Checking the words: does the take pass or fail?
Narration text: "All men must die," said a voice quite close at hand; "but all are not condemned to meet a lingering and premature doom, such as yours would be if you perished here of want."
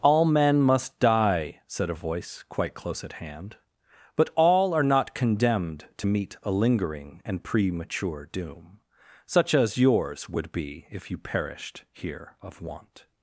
pass